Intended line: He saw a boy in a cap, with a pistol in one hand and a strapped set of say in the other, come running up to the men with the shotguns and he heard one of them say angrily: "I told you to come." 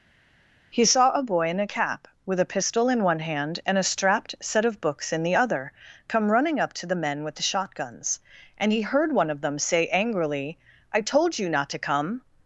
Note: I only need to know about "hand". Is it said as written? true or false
true